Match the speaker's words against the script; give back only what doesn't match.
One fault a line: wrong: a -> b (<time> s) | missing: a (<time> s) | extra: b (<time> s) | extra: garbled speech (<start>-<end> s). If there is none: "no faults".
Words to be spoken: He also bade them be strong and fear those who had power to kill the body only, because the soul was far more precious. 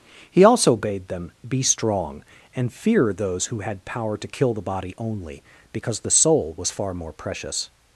no faults